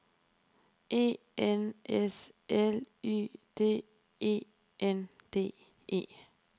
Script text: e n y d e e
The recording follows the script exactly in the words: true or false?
false